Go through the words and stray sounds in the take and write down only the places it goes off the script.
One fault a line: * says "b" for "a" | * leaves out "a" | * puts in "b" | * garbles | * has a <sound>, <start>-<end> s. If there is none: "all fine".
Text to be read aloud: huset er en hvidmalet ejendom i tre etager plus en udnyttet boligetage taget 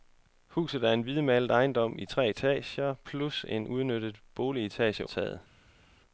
all fine